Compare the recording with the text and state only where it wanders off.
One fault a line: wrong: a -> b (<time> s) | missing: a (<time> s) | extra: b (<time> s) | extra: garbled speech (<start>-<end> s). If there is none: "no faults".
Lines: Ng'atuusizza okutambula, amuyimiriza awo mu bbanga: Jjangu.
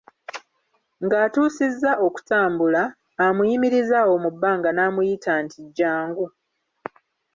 extra: n'amuyita nti (4.7 s)